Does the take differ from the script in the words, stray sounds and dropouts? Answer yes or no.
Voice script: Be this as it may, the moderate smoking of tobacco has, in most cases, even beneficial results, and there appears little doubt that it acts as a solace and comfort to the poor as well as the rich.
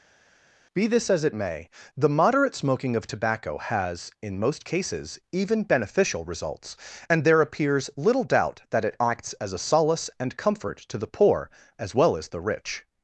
no